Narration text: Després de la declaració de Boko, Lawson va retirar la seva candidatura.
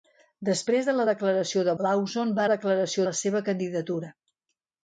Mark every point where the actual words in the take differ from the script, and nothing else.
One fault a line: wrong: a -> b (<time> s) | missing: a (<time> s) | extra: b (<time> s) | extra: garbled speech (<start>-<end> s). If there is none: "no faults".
missing: Boko (1.7 s)
wrong: retirar -> declaració (2.5 s)